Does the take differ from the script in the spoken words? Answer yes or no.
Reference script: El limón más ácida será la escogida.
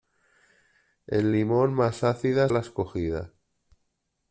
yes